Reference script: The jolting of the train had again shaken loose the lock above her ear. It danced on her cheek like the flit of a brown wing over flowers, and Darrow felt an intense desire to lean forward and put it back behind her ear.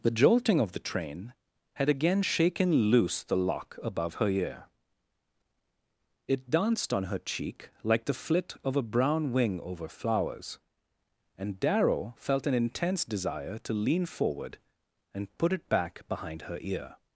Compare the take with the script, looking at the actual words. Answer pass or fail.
pass